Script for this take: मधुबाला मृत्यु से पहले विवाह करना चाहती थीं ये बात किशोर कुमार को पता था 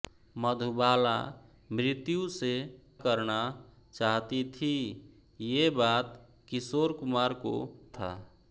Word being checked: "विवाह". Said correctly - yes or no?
no